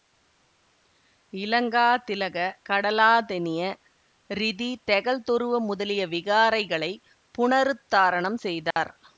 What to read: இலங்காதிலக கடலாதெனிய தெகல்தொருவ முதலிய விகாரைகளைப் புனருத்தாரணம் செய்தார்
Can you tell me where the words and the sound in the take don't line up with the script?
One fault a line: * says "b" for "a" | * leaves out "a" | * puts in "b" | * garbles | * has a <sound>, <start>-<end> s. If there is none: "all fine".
* puts in "ரிதி"
* has a dropout, 8.7-8.8 s